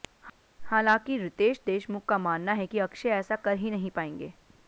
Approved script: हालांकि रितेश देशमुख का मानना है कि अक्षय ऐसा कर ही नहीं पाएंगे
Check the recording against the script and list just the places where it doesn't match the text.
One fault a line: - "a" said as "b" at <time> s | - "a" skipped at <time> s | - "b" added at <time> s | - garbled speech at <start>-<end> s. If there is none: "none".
none